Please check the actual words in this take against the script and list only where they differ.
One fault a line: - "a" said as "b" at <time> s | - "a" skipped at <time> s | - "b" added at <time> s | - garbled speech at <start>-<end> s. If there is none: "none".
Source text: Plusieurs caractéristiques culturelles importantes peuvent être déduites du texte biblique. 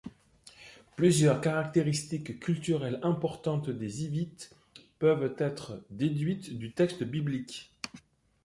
- "des Hivites" added at 3.7 s